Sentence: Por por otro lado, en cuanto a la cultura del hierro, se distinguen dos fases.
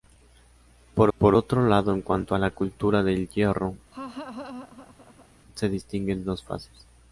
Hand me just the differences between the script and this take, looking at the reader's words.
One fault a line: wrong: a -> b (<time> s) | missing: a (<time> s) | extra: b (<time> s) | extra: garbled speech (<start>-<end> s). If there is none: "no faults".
no faults